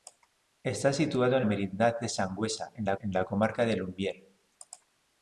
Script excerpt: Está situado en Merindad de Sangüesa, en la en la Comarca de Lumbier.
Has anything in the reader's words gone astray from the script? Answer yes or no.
no